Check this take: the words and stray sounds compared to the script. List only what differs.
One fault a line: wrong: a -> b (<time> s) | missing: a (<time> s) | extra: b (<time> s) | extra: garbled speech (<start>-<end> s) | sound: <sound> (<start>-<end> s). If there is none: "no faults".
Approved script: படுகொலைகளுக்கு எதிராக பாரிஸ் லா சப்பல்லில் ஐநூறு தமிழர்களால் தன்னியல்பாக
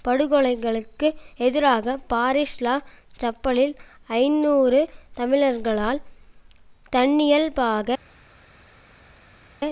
no faults